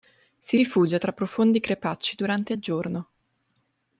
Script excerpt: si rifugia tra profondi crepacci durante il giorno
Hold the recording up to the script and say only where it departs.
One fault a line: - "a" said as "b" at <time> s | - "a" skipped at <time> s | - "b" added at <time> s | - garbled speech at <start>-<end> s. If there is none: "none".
none